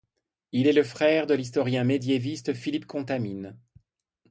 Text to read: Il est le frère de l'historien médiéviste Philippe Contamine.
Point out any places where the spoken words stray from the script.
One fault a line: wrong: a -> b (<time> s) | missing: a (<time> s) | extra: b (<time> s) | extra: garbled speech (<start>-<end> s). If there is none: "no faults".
no faults